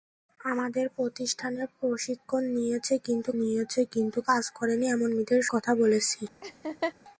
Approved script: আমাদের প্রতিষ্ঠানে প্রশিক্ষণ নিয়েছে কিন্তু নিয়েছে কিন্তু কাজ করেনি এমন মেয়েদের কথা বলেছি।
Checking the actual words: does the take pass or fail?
pass